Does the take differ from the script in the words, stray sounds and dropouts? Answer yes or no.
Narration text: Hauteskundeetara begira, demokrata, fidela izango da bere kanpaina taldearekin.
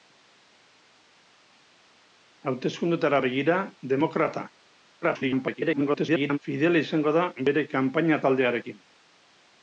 yes